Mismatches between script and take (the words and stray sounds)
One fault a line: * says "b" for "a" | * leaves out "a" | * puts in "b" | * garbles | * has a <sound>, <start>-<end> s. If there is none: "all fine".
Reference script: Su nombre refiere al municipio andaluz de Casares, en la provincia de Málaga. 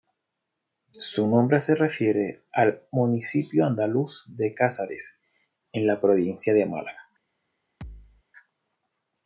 * puts in "se"
* has a thud, 7.8-8.2 s